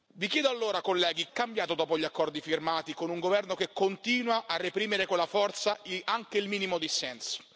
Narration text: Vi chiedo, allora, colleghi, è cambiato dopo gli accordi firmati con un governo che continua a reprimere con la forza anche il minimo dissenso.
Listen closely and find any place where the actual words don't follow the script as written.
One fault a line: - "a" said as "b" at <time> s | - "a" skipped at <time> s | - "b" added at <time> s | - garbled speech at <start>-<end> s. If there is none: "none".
none